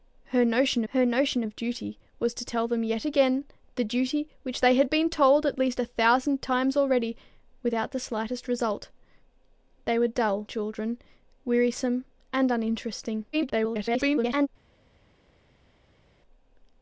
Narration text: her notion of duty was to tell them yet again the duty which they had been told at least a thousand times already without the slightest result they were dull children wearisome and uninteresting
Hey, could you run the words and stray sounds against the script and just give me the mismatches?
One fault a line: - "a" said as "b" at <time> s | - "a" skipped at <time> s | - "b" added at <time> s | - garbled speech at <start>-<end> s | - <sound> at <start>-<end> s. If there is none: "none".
- "her notion" added at 0.9 s
- garbled speech at 13.3-14.5 s